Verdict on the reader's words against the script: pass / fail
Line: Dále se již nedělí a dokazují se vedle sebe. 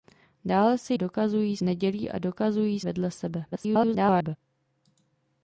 fail